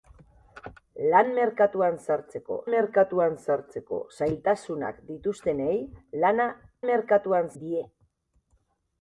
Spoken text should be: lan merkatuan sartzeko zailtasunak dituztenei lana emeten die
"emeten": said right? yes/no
no